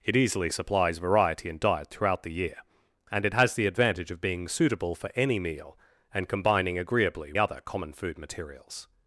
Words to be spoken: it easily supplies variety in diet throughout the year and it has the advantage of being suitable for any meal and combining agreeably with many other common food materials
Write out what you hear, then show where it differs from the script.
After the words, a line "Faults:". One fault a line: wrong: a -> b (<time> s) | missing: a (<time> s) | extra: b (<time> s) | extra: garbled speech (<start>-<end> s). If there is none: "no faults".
it easily supplies variety in diet throughout the year and it has the advantage of being suitable for any meal and combining agreeably other common food materials
Faults:
missing: with many (7.3 s)